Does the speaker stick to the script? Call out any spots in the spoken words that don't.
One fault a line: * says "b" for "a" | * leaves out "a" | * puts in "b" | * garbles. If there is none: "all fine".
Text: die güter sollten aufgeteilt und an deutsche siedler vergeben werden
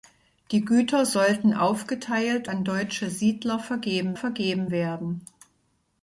* leaves out "und"
* puts in "vergeben"